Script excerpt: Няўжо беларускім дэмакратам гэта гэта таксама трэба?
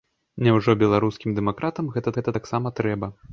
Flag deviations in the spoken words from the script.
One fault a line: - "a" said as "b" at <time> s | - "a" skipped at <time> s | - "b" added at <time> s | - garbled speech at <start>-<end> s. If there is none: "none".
none